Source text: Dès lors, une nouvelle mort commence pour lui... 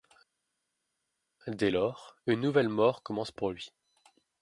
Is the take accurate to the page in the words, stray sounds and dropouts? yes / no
yes